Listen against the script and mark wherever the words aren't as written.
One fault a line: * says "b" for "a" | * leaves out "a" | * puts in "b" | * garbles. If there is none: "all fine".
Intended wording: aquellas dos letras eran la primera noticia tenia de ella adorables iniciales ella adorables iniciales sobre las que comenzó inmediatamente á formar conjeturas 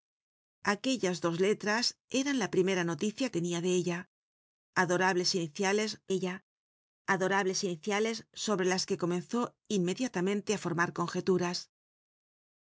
all fine